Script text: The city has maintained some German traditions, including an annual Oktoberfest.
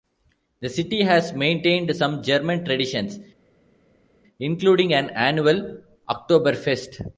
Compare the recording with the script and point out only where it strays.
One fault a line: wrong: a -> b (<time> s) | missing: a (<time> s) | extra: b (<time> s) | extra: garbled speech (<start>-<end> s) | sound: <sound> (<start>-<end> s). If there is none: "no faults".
no faults